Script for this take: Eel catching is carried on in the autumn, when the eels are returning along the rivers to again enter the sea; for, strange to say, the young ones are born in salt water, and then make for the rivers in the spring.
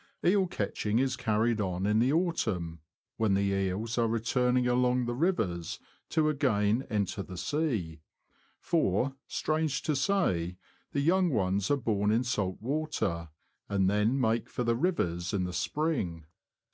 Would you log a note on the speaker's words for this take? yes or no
no